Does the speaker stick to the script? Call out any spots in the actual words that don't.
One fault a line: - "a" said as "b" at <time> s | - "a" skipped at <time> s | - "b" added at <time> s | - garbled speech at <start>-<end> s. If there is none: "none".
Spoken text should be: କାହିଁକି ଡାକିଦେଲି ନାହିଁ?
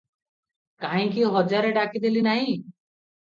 - "ହଜାରେ" added at 1.3 s